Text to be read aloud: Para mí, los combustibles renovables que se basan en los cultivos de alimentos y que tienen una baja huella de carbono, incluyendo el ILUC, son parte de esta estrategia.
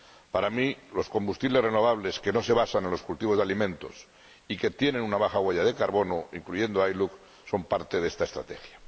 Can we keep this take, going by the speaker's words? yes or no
no